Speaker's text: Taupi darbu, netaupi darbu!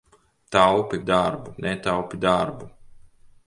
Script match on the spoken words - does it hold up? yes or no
yes